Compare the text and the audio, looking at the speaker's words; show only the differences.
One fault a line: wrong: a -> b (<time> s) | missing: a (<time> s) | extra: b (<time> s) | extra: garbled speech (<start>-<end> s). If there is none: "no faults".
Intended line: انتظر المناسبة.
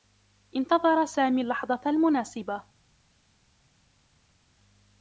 extra: سامي اللّحظة (1.1 s)